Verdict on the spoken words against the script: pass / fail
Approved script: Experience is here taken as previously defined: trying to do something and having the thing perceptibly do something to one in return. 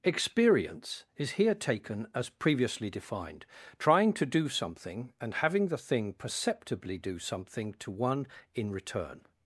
pass